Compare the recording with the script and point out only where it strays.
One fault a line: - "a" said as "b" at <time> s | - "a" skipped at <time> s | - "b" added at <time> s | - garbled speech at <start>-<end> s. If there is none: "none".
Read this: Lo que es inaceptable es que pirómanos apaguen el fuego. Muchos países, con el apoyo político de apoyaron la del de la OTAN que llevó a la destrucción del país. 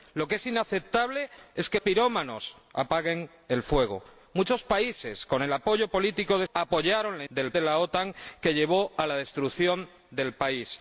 none